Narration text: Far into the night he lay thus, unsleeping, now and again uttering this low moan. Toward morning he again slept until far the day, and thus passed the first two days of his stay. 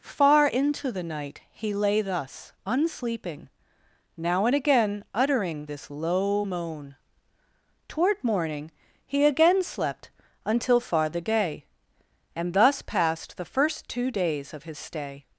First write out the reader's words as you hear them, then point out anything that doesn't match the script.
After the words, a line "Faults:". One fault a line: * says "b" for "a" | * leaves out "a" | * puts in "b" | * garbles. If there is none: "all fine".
Far into the night he lay thus, unsleeping, now and again uttering this low moan. Toward morning he again slept until far the day, and thus passed the first two days of his stay.
Faults:
all fine